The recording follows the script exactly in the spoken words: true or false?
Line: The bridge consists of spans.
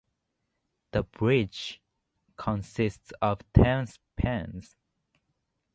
false